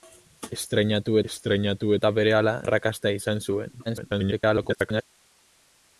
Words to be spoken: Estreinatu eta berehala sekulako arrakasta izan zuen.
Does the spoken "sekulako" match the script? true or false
false